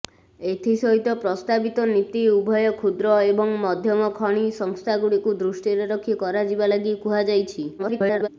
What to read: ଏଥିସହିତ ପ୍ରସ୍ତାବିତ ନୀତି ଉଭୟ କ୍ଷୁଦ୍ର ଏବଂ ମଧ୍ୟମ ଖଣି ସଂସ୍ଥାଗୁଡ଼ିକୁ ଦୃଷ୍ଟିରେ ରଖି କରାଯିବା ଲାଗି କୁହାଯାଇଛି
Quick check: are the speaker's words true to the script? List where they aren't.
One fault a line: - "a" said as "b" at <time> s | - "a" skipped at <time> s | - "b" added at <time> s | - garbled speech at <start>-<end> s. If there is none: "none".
- garbled speech at 7.8-8.3 s